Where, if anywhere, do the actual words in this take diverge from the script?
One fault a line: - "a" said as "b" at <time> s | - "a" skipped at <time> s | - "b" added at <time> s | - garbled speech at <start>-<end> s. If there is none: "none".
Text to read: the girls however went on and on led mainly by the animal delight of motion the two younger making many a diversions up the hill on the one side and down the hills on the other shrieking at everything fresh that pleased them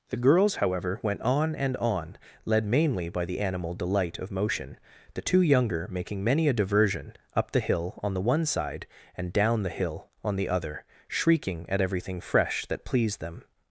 - "diversions" said as "diversion" at 6.5 s
- "hills" said as "hill" at 9.7 s